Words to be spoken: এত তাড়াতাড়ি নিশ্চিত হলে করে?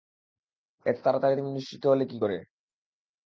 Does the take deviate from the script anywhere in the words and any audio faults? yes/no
yes